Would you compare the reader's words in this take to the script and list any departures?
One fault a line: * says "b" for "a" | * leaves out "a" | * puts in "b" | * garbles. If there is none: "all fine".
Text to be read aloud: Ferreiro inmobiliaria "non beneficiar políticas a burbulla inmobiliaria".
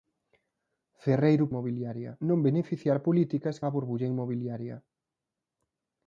all fine